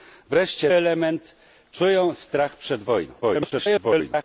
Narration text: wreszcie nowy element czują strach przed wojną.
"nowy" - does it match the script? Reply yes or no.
no